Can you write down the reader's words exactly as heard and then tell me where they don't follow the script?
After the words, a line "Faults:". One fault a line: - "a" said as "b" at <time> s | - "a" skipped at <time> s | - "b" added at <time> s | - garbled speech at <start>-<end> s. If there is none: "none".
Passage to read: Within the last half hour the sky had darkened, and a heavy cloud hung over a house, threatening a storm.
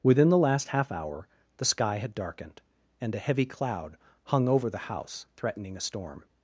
Within the last half hour the sky had darkened, and a heavy cloud hung over the house, threatening a storm.
Faults:
- "a" said as "the" at 4.7 s